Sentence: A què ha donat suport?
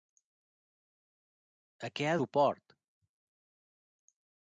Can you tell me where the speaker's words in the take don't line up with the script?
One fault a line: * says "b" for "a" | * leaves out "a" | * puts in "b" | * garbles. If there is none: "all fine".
* leaves out "donat"